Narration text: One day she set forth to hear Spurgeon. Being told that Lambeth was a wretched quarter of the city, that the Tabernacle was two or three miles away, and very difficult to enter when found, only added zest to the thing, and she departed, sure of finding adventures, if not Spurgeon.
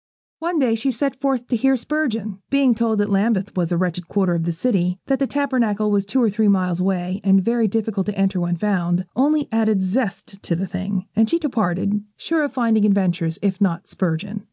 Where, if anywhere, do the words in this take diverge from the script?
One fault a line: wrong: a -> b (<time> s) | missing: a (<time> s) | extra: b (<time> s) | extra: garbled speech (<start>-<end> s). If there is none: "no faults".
no faults